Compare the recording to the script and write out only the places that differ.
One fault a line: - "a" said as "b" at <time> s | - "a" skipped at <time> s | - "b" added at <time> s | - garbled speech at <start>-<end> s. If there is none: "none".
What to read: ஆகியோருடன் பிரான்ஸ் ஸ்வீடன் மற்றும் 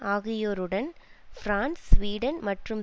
none